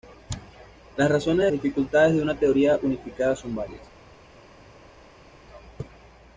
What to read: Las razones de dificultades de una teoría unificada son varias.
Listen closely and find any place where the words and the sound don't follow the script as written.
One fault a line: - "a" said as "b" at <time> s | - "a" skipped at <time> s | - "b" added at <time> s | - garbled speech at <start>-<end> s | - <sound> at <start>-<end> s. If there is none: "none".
none